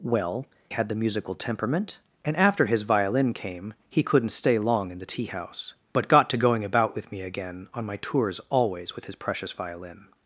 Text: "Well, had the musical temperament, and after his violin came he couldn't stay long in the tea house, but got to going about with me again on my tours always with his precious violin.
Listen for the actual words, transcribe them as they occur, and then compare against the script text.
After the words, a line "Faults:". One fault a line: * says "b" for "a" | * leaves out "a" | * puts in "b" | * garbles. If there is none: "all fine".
"Well, had the musical temperament, and after his violin came he couldn't stay long in the tea house, but got to going about with me again on my tours always with his precious violin.
Faults:
all fine